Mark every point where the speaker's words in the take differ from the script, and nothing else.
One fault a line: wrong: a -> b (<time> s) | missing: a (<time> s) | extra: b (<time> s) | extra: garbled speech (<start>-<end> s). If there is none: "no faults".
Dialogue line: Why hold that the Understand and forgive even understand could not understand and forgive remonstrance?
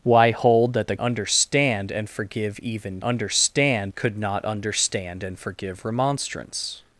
no faults